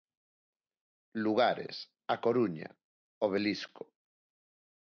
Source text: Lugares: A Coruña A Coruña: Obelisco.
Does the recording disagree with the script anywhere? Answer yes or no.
yes